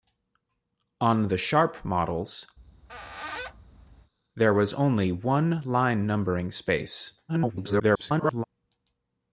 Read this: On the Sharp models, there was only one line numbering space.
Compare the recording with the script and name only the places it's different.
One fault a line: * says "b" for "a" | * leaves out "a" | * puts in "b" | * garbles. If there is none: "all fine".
* garbles